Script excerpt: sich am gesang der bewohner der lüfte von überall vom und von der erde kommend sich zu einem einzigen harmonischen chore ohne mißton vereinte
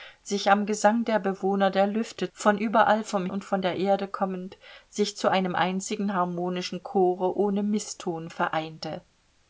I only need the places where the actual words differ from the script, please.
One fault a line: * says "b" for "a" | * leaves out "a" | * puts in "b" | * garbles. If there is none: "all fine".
all fine